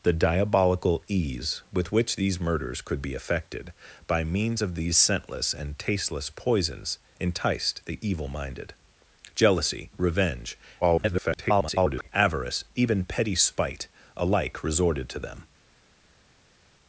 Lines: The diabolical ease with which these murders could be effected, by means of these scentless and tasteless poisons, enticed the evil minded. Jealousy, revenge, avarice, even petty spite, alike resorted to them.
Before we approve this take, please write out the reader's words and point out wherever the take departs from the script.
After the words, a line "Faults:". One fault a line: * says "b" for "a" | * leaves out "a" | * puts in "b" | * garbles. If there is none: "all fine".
The diabolical ease with which these murders could be effected, by means of these scentless and tasteless poisons, enticed the evil minded. Jealousy, revenge, [garbled] avarice, even petty spite, alike resorted to them.
Faults:
* garbles